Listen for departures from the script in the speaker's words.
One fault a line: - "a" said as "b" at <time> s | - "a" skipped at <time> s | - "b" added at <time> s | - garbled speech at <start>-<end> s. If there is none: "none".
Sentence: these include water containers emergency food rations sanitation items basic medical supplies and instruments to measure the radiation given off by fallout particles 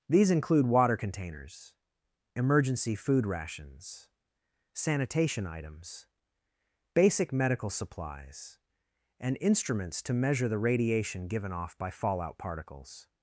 none